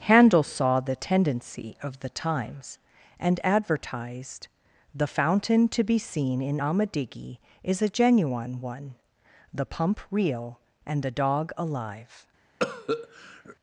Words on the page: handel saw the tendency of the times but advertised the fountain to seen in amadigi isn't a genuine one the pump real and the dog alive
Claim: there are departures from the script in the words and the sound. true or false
true